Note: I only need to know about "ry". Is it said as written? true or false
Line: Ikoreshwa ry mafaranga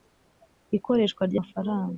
true